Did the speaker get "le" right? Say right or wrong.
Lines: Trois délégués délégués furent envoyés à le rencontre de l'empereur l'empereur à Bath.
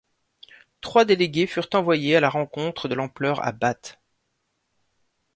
wrong